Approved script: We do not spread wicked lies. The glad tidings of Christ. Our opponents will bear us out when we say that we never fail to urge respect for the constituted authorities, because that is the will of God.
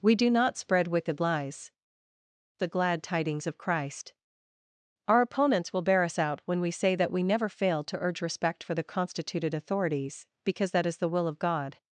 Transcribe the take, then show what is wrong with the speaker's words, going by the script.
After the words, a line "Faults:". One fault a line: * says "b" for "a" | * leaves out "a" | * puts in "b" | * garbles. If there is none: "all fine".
We do not spread wicked lies. The glad tidings of Christ. Our opponents will bear us out when we say that we never fail to urge respect for the constituted authorities, because that is the will of God.
Faults:
all fine